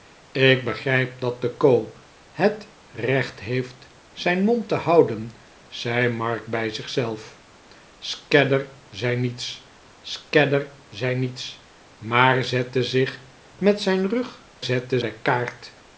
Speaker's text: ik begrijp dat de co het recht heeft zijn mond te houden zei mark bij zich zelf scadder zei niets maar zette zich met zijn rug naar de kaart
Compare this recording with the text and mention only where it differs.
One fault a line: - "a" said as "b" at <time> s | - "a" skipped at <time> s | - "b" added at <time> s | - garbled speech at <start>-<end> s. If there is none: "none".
- "scadder zei niets" added at 10.0 s
- "naar" said as "zette" at 14.6 s